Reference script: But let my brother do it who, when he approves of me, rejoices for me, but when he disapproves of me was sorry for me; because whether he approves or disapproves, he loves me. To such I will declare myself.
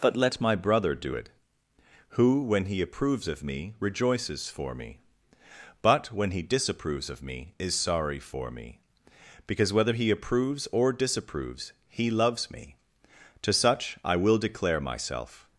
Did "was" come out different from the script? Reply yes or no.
yes